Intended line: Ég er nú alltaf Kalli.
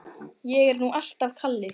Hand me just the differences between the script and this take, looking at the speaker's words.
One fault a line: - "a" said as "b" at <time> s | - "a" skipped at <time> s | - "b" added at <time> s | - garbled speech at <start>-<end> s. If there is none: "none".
none